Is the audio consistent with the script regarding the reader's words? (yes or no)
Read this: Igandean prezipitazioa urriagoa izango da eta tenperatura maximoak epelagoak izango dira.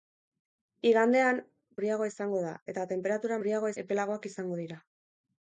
no